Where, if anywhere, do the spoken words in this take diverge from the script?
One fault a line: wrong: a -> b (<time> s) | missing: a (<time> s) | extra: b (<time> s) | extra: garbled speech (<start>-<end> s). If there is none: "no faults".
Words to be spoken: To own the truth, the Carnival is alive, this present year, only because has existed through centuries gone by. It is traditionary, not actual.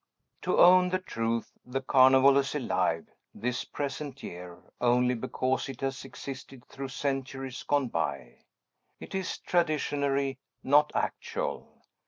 extra: it (5.7 s)